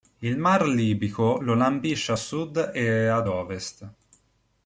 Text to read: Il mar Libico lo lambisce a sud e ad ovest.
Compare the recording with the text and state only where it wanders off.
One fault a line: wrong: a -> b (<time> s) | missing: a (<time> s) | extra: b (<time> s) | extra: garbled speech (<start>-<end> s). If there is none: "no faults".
no faults